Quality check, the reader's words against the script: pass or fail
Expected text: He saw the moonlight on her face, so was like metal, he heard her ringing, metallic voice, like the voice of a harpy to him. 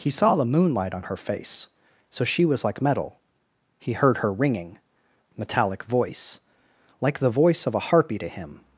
fail